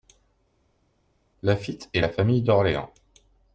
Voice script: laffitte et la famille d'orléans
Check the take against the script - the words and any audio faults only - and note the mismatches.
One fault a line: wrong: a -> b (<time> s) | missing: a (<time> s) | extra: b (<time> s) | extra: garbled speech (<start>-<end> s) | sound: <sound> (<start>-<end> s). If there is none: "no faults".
no faults